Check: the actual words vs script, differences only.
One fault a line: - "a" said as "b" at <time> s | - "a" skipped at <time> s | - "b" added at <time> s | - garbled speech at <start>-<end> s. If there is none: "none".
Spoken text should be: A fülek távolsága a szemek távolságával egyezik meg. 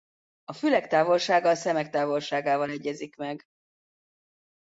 none